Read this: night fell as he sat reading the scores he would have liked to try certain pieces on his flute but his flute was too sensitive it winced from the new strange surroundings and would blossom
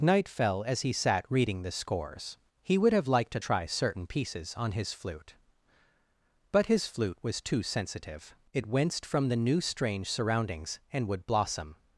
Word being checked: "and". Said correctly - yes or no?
yes